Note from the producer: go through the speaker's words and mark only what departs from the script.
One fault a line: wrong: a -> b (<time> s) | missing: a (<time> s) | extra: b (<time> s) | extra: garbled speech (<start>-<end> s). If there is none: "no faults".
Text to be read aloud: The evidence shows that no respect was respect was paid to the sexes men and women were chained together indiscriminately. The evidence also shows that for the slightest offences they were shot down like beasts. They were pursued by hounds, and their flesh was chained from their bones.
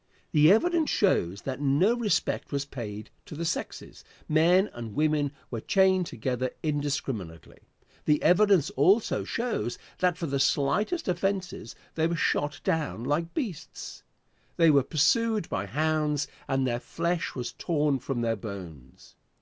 missing: respect was (2.6 s)
wrong: chained -> torn (17.5 s)